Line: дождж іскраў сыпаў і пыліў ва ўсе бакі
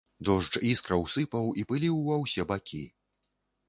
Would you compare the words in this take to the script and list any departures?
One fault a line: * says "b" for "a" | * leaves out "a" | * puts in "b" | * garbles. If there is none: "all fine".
all fine